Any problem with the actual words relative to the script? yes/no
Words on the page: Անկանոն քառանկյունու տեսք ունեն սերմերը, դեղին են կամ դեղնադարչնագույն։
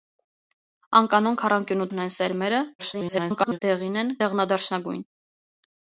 yes